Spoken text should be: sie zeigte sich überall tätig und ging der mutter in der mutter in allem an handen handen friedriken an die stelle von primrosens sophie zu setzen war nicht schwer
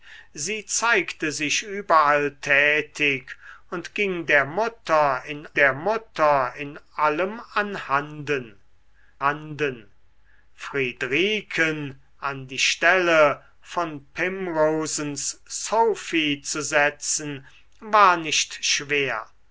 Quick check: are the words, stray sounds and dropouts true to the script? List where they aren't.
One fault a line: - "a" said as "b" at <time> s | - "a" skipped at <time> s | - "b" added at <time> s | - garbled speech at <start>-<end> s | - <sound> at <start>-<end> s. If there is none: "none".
none